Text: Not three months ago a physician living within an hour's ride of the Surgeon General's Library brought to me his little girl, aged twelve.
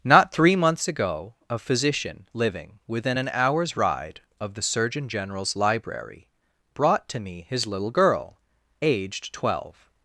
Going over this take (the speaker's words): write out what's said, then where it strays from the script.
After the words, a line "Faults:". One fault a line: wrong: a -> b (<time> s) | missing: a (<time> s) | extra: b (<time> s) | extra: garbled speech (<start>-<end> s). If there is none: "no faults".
Not three months ago a physician living within an hour's ride of the Surgeon General's Library brought to me his little girl, aged twelve.
Faults:
no faults